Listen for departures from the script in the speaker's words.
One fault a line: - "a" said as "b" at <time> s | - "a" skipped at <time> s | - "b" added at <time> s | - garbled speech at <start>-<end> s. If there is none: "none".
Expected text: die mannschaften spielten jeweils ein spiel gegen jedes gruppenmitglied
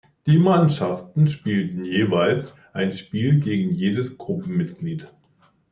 none